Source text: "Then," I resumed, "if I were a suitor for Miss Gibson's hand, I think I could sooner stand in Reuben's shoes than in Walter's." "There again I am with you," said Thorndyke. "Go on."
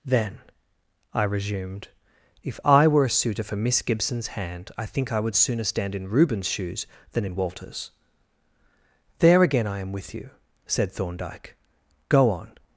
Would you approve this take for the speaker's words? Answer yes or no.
no